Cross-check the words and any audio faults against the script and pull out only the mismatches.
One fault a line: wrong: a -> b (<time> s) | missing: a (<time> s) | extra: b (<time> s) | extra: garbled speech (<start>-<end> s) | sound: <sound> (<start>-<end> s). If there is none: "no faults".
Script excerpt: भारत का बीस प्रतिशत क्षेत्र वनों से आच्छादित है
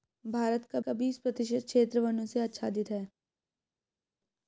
extra: का (0.8 s)